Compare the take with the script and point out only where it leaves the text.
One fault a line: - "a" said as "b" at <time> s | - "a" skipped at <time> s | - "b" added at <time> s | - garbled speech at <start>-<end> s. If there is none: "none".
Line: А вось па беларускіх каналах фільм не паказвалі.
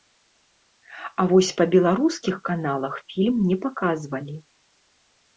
none